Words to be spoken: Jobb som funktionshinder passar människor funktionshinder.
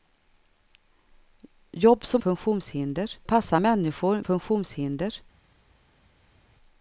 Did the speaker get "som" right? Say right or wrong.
right